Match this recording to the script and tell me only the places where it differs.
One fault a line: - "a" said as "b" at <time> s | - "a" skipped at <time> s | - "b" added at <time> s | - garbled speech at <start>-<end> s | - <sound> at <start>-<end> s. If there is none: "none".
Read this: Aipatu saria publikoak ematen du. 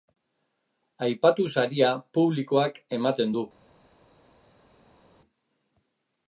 none